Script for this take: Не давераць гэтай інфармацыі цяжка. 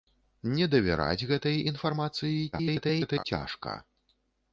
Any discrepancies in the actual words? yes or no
yes